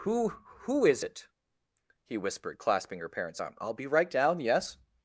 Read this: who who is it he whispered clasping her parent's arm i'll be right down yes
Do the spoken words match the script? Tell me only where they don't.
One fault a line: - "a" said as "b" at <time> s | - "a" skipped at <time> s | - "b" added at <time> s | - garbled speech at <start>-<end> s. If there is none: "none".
none